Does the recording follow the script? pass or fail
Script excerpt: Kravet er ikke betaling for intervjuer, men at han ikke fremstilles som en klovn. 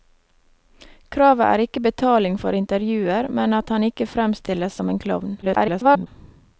fail